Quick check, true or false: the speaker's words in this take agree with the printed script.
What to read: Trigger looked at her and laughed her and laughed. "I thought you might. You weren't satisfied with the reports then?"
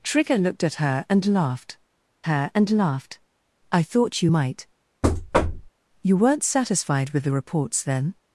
true